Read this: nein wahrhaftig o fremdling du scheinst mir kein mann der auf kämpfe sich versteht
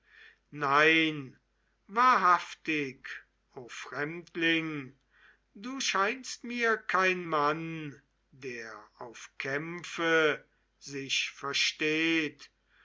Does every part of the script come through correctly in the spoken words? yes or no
yes